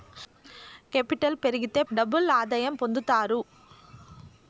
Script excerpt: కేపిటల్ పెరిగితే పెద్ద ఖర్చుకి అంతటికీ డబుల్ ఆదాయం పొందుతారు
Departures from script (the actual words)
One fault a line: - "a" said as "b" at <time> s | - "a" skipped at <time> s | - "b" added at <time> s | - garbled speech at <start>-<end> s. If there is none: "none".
- "పెద్ద ఖర్చుకి అంతటికీ" skipped at 1.8 s